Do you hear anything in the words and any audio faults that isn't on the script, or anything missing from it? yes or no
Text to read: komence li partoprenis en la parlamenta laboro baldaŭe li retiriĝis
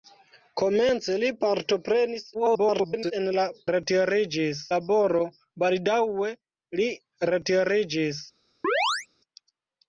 yes